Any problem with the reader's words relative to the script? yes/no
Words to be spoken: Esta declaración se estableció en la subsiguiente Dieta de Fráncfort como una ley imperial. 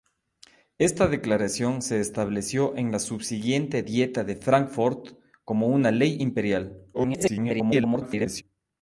yes